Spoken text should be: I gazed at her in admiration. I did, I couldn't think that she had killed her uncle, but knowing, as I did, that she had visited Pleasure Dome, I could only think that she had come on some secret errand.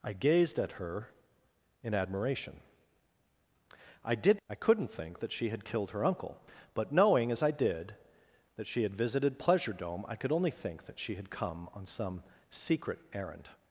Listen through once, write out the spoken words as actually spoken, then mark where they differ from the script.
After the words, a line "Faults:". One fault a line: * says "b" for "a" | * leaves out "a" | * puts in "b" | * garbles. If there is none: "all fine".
I gazed at her in admiration. I did, I couldn't think that she had killed her uncle, but knowing, as I did, that she had visited Pleasure Dome, I could only think that she had come on some secret errand.
Faults:
all fine